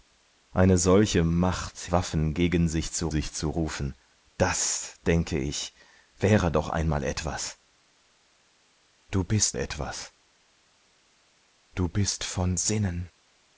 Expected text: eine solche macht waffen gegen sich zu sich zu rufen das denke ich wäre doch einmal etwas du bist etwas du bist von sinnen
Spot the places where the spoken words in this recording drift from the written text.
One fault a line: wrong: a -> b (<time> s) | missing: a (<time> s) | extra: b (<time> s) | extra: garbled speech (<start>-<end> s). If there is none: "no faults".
no faults